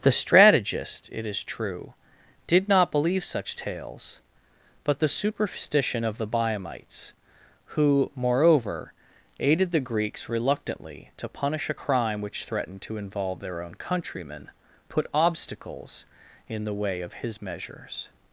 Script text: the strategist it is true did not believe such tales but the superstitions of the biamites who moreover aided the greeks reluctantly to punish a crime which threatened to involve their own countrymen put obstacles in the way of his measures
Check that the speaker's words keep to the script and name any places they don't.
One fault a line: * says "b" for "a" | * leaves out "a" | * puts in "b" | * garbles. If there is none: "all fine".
* says "superstition" for "superstitions"